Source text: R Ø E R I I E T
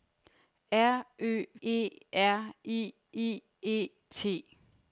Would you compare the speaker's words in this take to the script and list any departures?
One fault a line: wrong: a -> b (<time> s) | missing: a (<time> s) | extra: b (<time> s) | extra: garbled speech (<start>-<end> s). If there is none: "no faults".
no faults